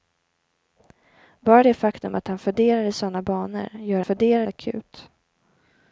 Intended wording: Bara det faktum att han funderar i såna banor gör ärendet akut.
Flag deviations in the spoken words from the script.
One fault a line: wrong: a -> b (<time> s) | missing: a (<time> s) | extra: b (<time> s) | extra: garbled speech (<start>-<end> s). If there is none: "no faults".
wrong: ärendet -> funderar (4.0 s)